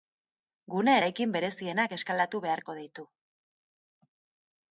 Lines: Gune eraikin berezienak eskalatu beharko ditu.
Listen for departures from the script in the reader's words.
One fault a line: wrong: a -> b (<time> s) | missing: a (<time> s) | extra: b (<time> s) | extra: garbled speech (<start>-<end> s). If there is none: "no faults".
no faults